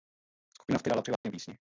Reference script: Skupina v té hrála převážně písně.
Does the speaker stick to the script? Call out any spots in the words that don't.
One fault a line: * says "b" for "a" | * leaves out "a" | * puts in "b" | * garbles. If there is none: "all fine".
all fine